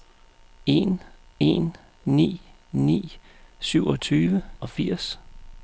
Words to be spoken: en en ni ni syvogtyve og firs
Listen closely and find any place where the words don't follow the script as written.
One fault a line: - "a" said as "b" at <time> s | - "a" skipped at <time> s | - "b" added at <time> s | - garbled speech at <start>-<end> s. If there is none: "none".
none